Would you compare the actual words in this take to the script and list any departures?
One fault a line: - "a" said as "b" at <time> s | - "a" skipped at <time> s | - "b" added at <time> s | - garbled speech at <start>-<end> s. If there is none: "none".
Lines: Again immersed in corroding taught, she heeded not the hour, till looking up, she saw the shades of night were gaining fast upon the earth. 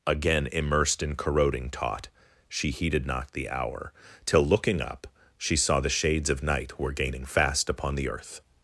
none